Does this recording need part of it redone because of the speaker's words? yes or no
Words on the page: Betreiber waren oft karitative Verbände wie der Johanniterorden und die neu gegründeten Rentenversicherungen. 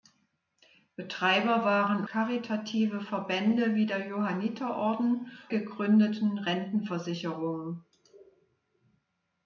yes